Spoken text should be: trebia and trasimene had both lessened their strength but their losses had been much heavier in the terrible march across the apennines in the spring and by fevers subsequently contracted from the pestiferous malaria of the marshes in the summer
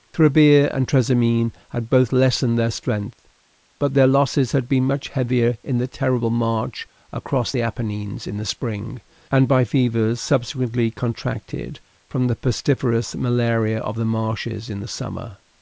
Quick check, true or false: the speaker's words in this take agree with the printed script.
true